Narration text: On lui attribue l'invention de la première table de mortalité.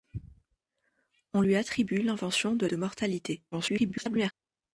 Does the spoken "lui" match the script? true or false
true